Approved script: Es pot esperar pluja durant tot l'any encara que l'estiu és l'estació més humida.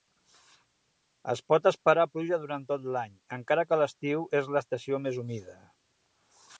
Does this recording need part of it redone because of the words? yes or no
no